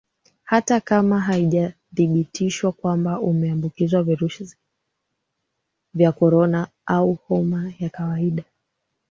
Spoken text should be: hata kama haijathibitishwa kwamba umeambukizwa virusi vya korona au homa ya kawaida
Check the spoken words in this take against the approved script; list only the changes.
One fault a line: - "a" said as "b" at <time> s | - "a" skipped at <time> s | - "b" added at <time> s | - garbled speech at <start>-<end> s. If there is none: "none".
none